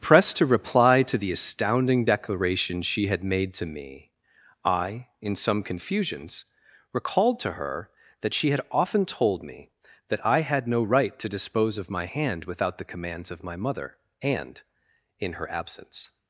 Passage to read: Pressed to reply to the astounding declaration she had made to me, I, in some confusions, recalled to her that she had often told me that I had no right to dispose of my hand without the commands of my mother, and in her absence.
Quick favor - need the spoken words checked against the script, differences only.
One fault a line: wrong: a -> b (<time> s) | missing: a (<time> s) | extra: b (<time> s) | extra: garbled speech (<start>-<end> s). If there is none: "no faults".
no faults